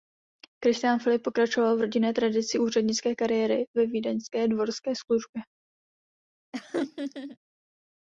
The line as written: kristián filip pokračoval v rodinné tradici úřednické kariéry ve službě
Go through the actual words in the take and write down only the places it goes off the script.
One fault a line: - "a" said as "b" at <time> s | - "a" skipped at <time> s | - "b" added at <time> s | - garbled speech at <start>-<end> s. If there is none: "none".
- "vídeňské dvorské" added at 3.9 s